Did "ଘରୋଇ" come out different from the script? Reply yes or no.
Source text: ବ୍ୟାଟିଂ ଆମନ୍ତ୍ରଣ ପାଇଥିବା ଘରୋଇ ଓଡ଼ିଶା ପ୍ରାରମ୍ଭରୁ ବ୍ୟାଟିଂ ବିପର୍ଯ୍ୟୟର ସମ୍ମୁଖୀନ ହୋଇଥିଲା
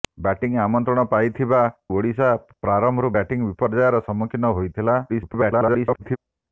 yes